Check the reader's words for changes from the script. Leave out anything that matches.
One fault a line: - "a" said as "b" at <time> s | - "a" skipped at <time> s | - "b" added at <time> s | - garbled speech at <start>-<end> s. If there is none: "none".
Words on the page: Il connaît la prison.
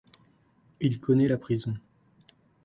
none